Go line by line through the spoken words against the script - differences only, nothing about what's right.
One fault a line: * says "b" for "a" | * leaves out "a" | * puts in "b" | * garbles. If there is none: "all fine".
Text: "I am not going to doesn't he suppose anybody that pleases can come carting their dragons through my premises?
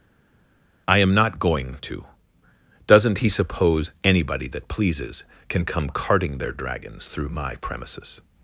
all fine